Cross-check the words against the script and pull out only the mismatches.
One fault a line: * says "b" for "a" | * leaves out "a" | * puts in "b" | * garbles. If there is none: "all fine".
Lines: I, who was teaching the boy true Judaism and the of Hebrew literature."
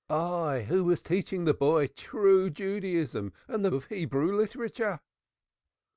all fine